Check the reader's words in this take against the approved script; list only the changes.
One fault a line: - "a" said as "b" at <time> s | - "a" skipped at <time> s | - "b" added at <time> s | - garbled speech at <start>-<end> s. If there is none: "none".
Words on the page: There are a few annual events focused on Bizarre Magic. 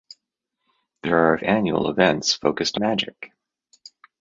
- "few" skipped at 1.4 s
- "on Bizarre" skipped at 2.8 s